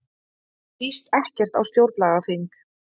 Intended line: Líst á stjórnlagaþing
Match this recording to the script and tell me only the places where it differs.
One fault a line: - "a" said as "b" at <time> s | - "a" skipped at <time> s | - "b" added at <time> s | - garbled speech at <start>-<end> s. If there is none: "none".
- "ekkert" added at 1.2 s